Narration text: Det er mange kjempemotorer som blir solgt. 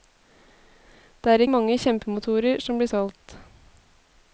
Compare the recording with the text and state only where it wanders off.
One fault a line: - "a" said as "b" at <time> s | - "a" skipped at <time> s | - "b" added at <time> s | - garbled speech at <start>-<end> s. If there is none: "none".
none